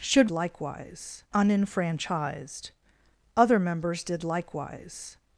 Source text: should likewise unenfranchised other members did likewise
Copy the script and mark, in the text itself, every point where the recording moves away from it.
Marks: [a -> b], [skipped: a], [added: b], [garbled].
should likewise unenfranchised other members did likewise